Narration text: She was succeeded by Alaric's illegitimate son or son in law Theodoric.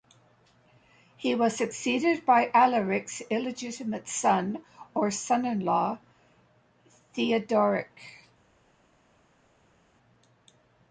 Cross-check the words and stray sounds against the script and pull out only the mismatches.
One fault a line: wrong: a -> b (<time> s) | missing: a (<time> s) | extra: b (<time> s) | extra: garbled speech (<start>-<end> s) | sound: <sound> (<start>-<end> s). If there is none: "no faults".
wrong: She -> He (1.1 s)